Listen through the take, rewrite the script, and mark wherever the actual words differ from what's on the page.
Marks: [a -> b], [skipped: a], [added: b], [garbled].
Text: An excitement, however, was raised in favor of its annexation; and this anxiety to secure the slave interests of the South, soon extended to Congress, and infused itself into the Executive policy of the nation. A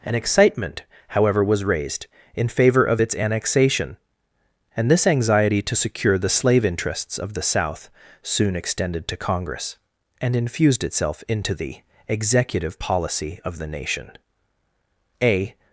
An excitement, however, was raised in favor of its annexation; and this anxiety to secure the slave interests of the South, soon extended to Congress, and infused itself into the Executive policy of the nation. A